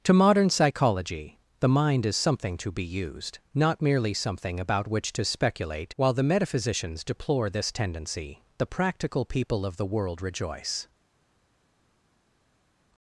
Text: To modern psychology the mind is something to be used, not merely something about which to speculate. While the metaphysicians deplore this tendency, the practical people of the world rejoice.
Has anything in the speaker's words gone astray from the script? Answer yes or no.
no